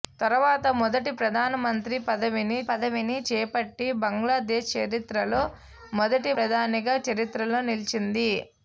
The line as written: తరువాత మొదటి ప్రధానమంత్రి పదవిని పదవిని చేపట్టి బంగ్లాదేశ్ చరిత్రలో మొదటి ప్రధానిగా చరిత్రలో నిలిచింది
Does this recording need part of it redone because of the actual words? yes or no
no